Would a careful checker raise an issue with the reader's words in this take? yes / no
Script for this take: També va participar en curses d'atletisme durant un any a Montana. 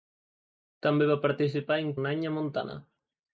yes